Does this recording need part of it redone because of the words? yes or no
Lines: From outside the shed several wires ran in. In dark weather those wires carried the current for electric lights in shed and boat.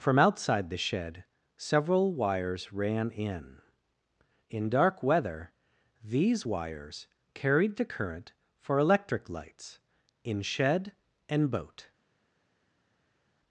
yes